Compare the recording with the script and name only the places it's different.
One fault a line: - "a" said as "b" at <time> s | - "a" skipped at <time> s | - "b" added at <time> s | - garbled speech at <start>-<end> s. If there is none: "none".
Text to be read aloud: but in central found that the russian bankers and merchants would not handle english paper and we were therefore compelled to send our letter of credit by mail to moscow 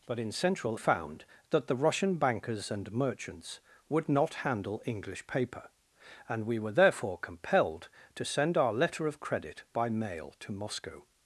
none